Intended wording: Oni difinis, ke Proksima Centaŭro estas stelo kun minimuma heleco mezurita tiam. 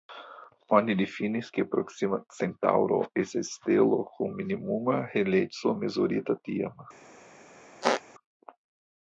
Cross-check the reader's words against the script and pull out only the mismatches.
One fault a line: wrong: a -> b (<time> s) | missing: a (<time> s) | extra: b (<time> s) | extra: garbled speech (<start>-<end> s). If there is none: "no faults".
no faults